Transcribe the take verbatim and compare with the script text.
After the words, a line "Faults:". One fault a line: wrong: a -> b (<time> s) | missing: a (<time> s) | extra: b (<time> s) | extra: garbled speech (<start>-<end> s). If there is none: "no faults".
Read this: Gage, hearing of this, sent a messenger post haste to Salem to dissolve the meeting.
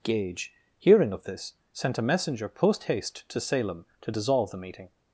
Gage, hearing of this, sent a messenger post haste to Salem to dissolve the meeting.
Faults:
no faults